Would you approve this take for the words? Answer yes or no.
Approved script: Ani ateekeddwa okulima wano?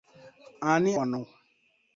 no